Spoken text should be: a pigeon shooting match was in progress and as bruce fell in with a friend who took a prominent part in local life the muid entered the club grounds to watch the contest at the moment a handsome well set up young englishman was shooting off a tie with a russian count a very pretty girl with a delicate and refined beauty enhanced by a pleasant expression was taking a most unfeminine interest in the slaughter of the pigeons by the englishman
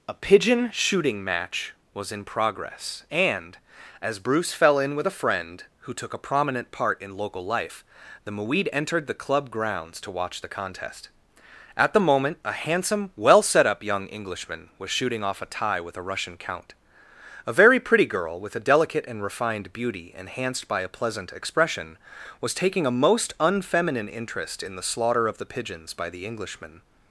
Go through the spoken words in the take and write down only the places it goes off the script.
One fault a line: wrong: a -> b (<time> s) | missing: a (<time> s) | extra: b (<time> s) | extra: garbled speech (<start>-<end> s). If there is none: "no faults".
no faults